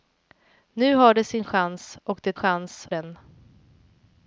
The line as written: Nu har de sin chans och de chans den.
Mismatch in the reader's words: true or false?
false